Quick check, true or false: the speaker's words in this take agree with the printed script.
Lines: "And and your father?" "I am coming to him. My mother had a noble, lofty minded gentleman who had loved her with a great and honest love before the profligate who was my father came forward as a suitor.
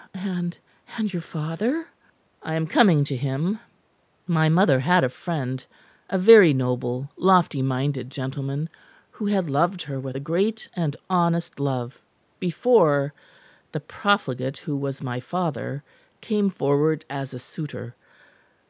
false